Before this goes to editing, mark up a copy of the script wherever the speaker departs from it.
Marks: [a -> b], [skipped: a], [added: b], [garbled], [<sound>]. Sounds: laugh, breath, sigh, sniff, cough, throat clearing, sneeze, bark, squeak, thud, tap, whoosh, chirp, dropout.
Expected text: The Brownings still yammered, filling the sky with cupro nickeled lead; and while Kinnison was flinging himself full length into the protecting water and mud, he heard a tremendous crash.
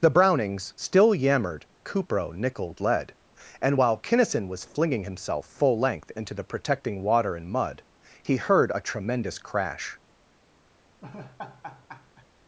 The Brownings still yammered, [skipped: filling the sky with] cupro nickeled lead; and while Kinnison was flinging himself full length into the protecting water and mud, he heard a tremendous crash. [laugh]